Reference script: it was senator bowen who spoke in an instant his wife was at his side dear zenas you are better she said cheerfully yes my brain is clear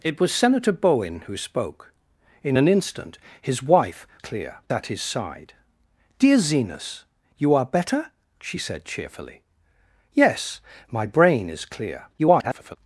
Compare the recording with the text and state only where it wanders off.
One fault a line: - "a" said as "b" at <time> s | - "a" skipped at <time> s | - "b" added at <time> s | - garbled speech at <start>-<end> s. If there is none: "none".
- "was" said as "clear" at 4.2 s
- garbled speech at 12.2-12.8 s